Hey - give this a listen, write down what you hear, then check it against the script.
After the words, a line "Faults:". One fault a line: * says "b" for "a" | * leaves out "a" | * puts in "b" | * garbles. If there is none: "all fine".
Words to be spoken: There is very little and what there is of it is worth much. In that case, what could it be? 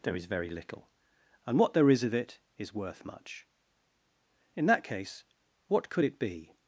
There is very little and what there is of it is worth much. In that case, what could it be?
Faults:
all fine